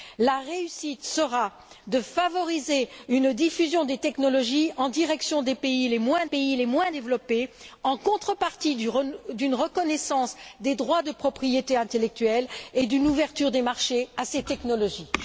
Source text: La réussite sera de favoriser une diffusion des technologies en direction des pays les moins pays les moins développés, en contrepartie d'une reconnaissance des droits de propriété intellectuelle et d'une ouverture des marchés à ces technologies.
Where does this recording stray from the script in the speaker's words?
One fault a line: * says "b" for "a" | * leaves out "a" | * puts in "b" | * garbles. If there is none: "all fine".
all fine